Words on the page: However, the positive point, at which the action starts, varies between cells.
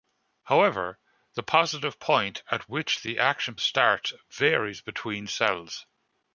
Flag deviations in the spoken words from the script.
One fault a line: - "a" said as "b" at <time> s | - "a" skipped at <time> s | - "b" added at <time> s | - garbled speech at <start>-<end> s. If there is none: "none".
none